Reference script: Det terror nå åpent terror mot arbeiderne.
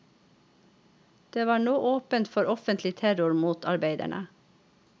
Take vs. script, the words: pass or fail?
fail